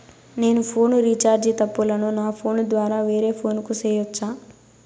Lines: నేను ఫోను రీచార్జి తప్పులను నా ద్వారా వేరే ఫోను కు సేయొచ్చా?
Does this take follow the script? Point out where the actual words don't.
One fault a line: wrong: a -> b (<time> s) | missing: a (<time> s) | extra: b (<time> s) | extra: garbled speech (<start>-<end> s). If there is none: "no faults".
extra: ఫోను (2.3 s)